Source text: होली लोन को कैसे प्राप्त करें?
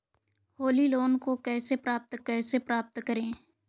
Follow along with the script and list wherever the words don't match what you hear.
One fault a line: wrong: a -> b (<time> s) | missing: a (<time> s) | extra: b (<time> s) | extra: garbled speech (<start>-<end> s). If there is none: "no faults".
extra: कैसे प्राप्त (2.2 s)